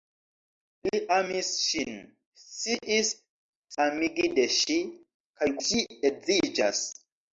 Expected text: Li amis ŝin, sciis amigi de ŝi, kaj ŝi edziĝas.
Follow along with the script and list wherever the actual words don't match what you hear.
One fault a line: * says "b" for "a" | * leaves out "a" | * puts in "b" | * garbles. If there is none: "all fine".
all fine